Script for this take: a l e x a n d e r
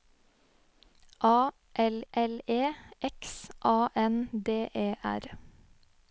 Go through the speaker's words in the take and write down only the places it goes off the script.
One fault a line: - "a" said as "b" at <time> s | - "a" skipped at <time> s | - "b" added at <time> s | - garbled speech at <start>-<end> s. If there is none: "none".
- "l" added at 2.1 s